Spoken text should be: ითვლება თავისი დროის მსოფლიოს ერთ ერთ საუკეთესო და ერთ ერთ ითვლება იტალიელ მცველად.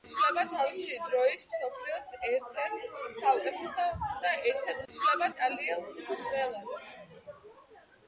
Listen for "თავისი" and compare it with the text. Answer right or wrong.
right